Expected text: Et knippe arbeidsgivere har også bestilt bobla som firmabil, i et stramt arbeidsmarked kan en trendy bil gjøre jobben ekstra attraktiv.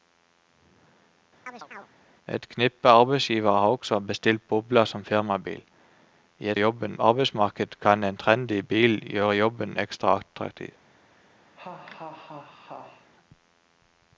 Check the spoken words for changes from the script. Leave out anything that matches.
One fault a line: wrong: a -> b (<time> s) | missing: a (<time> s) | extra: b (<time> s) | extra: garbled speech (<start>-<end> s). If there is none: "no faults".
wrong: stramt -> jobben (6.6 s)